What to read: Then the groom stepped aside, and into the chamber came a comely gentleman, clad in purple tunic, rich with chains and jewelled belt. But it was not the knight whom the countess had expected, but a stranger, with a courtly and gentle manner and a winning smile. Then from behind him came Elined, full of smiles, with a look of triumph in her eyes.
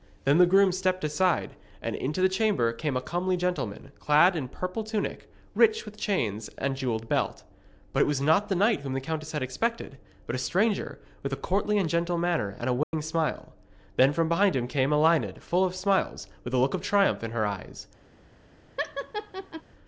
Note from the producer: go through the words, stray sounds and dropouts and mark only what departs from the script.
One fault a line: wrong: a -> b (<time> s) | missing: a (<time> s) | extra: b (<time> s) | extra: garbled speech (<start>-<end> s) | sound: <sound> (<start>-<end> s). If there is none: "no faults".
sound: dropout (12.8-12.9 s)
sound: laugh (18.8-19.6 s)